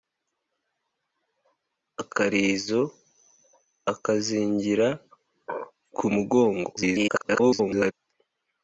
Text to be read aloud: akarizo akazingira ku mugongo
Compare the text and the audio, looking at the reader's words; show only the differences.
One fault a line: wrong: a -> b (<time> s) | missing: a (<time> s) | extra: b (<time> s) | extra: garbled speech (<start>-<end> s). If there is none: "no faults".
extra: garbled speech (6.8-7.9 s)